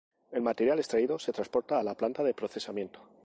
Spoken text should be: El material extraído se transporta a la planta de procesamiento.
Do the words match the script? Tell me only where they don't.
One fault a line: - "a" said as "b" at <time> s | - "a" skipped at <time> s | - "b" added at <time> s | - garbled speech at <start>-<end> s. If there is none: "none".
none